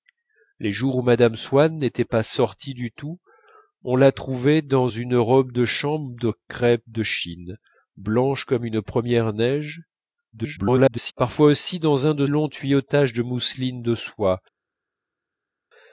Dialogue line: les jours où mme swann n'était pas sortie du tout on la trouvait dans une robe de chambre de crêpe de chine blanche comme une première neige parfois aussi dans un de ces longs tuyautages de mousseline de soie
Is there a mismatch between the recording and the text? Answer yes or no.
yes